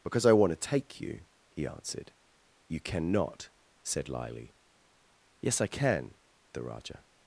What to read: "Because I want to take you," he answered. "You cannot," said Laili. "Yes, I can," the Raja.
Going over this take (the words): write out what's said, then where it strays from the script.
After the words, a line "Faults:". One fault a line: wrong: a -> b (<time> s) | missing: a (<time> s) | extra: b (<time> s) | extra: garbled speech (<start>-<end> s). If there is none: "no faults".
"Because I want to take you," he answered. "You cannot," said Laili. "Yes, I can," the Raja.
Faults:
no faults